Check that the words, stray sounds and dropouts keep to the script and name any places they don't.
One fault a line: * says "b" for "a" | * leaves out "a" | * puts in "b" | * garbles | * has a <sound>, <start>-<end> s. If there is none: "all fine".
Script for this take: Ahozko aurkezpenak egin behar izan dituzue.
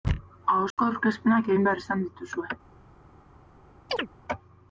* has a dropout, 0.7-0.8 s
* has a chirp, 3.9-4.1 s